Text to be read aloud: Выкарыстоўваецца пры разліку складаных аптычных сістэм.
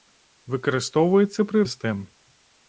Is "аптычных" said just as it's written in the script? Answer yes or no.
no